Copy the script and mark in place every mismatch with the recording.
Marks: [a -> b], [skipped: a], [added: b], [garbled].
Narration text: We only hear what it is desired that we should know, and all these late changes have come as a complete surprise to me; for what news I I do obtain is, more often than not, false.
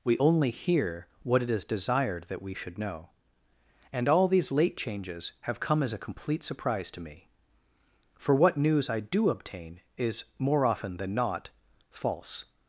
We only hear what it is desired that we should know, and all these late changes have come as a complete surprise to me; for what news I [skipped: I] do obtain is, more often than not, false.